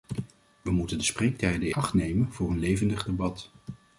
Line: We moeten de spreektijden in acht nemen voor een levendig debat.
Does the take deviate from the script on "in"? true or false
true